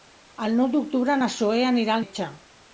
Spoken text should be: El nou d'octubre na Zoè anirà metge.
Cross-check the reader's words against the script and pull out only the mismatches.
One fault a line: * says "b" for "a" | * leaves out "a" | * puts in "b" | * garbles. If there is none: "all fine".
all fine